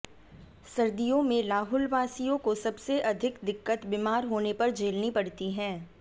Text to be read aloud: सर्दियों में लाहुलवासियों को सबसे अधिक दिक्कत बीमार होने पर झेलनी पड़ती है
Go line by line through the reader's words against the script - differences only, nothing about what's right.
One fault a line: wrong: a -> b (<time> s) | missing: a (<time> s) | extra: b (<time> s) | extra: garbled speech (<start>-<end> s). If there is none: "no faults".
no faults